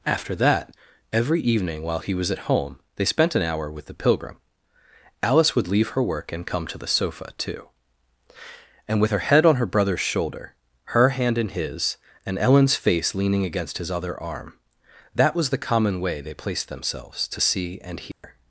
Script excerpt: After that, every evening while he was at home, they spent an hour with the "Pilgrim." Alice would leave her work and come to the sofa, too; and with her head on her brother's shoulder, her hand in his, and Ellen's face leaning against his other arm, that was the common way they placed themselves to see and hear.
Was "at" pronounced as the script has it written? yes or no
yes